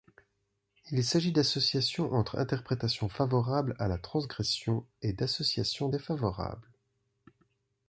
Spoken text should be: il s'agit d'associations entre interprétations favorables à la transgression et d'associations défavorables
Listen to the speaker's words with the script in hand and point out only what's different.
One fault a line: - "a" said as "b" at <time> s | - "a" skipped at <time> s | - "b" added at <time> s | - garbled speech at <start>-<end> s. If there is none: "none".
none